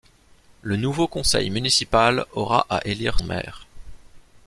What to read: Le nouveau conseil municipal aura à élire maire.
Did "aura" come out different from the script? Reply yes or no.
no